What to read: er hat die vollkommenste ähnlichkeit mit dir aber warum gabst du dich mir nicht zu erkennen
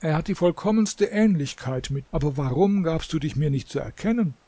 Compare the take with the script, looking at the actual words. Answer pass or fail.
fail